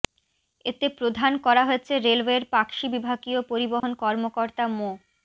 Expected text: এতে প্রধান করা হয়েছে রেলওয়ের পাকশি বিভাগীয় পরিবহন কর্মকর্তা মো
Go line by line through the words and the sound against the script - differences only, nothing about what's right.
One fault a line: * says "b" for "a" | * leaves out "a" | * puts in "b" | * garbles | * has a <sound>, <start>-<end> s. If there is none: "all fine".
* has a dropout, 3.8-3.8 s